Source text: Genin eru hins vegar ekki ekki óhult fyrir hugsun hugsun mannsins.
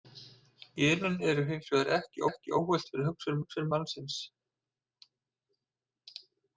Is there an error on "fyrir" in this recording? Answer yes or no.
no